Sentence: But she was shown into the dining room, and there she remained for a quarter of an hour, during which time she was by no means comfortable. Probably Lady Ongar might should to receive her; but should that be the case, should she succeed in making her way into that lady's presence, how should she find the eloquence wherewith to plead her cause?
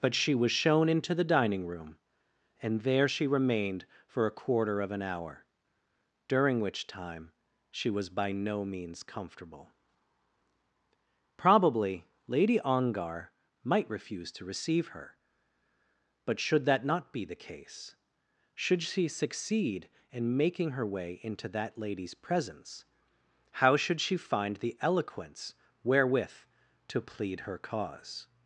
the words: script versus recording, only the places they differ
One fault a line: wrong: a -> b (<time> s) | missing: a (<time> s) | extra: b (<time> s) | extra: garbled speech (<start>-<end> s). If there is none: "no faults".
wrong: should -> refuse (13.9 s)
extra: not (16.8 s)